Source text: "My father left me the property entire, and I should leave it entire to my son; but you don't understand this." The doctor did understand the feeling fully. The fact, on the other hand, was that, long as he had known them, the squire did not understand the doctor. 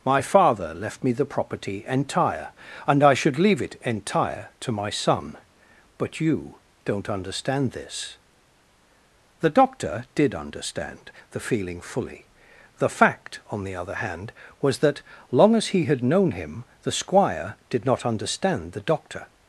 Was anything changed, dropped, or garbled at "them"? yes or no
yes